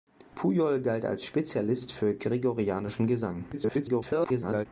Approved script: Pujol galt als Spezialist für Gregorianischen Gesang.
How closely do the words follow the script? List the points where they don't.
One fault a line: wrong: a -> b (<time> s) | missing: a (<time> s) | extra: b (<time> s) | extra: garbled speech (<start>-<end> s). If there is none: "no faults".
extra: garbled speech (3.5-4.7 s)